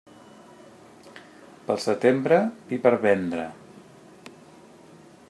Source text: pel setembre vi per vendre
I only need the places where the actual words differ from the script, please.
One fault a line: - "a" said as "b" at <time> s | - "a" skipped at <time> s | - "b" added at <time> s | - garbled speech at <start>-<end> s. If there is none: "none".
none